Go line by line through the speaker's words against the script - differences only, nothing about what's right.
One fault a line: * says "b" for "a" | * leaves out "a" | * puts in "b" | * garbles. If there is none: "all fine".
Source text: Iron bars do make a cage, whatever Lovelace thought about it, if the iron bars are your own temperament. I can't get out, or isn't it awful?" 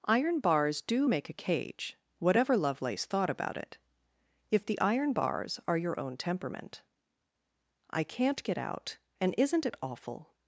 * says "and" for "or"